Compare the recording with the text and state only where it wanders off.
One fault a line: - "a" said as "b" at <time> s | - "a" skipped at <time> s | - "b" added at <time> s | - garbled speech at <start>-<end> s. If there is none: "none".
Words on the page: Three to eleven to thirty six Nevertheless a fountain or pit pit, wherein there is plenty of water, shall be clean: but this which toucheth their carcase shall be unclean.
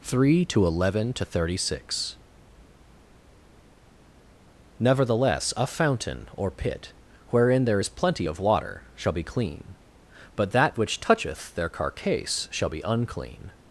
- "pit" skipped at 6.9 s
- "this" said as "that" at 10.5 s